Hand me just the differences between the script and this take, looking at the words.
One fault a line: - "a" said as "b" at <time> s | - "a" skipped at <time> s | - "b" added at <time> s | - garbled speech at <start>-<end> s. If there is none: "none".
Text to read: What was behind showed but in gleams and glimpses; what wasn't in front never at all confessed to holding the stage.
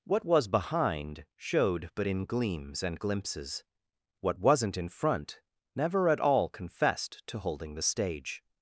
none